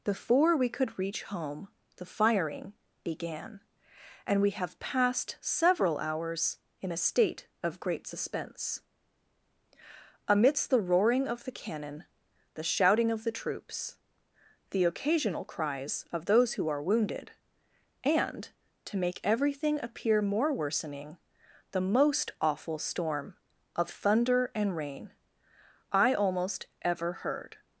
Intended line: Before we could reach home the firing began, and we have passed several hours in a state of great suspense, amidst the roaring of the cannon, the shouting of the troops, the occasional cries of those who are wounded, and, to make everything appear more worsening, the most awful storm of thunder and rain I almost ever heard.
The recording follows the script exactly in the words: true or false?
true